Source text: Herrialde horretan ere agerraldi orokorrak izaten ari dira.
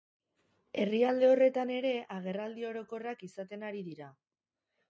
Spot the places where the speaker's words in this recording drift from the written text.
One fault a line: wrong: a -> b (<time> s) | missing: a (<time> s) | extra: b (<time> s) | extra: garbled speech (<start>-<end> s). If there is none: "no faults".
no faults